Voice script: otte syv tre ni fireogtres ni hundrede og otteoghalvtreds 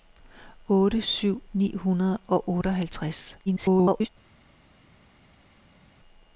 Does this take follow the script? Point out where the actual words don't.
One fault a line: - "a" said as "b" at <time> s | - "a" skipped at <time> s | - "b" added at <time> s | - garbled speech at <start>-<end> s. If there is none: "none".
- "tre ni fireogtres" skipped at 1.4 s
- garbled speech at 3.5-4.1 s